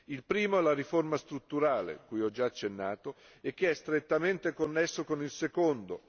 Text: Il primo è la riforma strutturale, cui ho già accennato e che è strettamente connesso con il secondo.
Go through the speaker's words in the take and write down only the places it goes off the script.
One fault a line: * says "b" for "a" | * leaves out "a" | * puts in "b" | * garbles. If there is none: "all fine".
all fine